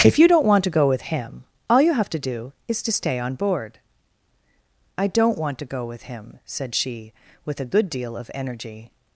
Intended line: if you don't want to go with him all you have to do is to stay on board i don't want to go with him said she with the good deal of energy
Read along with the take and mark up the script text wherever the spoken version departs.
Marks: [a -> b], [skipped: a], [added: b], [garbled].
if you don't want to go with him all you have to do is to stay on board i don't want to go with him said she with [the -> a] good deal of energy